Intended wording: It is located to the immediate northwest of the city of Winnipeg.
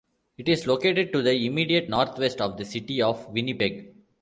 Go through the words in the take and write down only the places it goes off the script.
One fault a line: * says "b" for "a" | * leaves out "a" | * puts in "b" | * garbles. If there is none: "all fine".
all fine